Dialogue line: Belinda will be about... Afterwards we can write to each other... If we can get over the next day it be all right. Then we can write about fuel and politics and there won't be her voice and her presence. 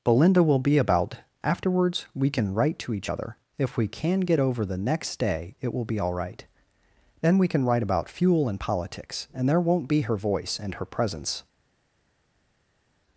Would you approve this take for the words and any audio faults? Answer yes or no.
no